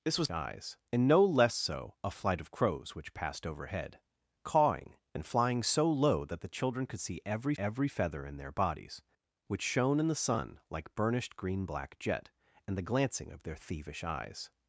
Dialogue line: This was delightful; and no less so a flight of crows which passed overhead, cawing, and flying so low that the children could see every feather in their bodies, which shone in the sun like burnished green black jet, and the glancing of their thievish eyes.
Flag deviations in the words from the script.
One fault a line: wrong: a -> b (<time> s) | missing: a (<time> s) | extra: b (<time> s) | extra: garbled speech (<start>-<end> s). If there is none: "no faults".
wrong: delightful -> eyes (0.3 s)
extra: every (7.6 s)